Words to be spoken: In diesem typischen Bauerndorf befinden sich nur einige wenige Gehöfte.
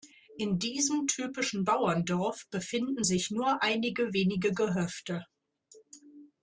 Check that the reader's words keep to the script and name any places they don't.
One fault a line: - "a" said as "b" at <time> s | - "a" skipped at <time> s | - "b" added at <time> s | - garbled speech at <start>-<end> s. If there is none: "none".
none